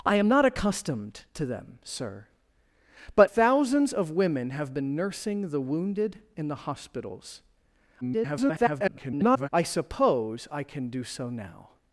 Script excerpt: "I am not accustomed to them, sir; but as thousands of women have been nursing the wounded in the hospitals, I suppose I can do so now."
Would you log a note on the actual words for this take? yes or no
yes